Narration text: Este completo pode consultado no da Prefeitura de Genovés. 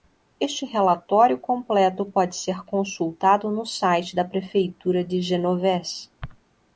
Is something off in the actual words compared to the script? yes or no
yes